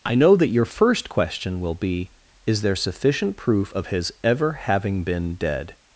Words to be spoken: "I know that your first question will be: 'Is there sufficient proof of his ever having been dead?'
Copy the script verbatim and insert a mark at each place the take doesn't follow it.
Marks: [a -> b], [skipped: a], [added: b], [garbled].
"I know that your first question will be: 'Is there sufficient proof of his ever having been dead?'